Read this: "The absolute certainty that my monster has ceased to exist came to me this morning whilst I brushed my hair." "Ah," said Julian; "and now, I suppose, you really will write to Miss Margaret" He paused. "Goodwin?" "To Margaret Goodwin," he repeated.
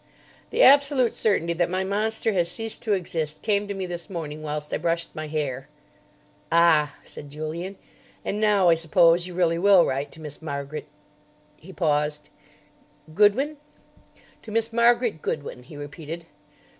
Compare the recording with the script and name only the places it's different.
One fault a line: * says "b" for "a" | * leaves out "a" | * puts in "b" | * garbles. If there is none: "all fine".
* puts in "Miss"